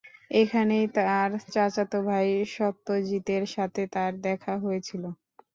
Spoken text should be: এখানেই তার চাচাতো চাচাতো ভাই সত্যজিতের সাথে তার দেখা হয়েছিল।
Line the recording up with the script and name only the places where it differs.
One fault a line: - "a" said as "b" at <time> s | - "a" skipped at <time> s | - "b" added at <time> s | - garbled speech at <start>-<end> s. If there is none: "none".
- "চাচাতো" skipped at 2.0 s